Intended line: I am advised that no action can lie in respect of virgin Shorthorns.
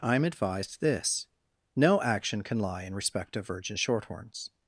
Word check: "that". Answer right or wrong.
wrong